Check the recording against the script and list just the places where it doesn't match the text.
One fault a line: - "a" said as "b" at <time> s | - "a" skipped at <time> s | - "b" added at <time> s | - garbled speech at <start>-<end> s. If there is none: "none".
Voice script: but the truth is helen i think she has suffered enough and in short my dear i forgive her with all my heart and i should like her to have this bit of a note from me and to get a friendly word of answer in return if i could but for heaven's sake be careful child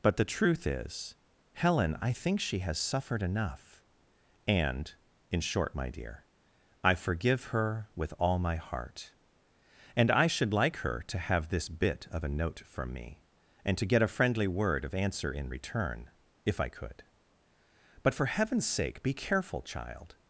none